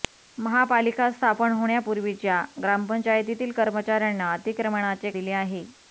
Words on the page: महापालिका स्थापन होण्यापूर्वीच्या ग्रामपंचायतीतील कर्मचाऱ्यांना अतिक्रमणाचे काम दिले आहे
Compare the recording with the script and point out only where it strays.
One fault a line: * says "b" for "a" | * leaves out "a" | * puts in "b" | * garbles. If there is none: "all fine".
* leaves out "काम"